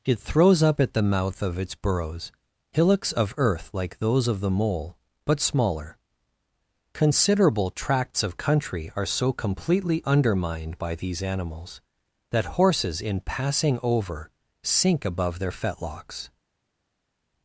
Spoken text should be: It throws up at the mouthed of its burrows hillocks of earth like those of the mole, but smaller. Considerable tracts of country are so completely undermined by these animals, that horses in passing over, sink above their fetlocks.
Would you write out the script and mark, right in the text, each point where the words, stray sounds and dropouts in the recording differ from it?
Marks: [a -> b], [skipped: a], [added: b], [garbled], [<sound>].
It throws up at the [mouthed -> mouth] of its burrows hillocks of earth like those of the mole, but smaller. Considerable tracts of country are so completely undermined by these animals, that horses in passing over, sink above their fetlocks.